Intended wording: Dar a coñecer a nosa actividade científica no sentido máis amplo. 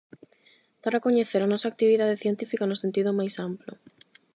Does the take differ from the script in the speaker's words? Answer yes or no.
no